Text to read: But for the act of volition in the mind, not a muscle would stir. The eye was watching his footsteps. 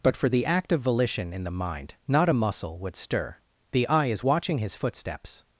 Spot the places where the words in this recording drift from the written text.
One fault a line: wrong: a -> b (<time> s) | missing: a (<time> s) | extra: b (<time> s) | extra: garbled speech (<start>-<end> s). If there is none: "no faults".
wrong: was -> is (4.1 s)